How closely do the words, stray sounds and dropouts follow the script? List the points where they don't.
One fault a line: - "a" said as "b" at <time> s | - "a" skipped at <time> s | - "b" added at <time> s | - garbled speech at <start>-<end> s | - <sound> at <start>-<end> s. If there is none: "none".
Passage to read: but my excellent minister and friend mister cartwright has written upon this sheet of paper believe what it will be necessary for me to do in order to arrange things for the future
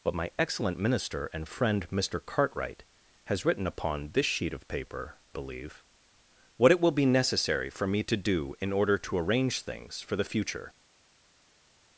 none